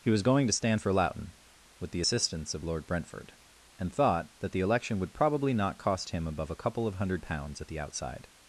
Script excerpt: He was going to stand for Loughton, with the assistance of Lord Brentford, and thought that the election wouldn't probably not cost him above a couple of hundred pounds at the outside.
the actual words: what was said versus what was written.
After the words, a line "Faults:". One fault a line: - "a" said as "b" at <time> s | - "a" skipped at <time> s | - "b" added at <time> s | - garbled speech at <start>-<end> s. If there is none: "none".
He was going to stand for Loughton, with the assistance of Lord Brentford, and thought that the election would probably not cost him above a couple of hundred pounds at the outside.
Faults:
- "wouldn't" said as "would" at 5.0 s